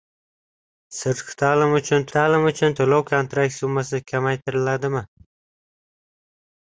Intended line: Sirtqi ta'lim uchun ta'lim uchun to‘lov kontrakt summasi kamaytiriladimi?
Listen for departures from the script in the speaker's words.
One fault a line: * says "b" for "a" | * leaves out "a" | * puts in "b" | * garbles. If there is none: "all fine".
all fine